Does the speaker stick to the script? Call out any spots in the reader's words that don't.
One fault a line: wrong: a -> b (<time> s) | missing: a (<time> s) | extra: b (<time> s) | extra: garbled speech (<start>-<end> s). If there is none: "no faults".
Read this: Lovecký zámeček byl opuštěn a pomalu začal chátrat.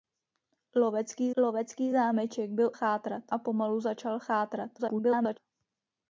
extra: lovecký (1.4 s)
wrong: opuštěn -> chátrat (2.7 s)
extra: garbled speech (4.8-5.4 s)